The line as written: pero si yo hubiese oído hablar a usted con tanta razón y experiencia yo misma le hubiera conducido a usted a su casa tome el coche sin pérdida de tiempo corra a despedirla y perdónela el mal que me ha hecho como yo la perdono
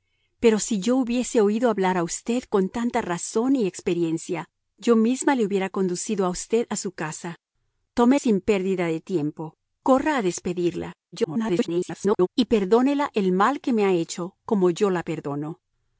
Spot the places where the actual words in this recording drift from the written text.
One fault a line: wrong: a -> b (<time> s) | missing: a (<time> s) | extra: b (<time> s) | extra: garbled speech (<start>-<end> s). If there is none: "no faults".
missing: el coche (8.2 s)
extra: garbled speech (11.1-12.3 s)